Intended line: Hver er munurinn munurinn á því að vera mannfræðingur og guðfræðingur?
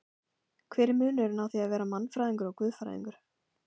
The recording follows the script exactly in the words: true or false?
false